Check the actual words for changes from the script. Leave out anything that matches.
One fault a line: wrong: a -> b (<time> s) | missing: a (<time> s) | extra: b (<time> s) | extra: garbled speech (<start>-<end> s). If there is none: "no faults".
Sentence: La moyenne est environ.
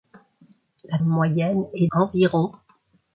no faults